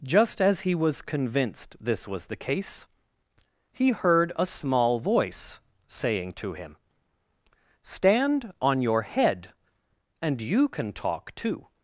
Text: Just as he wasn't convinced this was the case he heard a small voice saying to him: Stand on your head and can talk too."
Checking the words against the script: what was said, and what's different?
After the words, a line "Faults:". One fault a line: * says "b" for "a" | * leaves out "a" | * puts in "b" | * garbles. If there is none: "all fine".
Just as he was convinced this was the case he heard a small voice saying to him: Stand on your head and you can talk too."
Faults:
* says "was" for "wasn't"
* puts in "you"